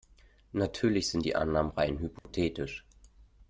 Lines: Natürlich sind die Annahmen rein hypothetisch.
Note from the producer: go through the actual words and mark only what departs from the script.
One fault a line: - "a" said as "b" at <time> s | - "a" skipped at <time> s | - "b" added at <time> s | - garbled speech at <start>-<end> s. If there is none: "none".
none